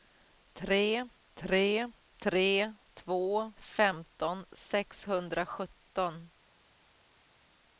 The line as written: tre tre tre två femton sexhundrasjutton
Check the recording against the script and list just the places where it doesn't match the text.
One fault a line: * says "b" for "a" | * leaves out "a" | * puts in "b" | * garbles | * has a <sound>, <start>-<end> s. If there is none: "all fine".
all fine